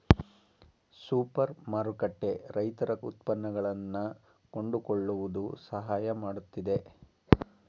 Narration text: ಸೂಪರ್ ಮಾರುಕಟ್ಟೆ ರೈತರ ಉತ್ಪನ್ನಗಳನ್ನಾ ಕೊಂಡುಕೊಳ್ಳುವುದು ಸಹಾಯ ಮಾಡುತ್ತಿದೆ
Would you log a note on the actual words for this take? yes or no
no